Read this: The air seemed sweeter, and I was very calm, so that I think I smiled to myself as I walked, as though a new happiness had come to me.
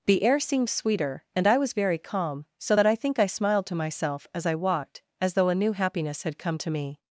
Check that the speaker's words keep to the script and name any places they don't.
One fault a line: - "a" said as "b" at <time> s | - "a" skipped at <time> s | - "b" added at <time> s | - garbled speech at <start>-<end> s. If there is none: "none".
none